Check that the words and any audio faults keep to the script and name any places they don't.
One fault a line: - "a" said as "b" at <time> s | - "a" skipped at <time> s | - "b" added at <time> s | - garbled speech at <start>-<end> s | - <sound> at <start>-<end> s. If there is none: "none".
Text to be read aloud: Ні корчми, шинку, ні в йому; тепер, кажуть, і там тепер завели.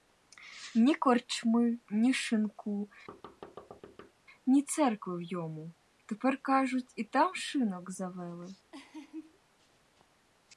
- "ні" added at 1.9 s
- thud at 3.1-4.1 s
- "церкви" added at 4.6 s
- "тепер" said as "шинок" at 7.4 s
- laugh at 8.7-9.4 s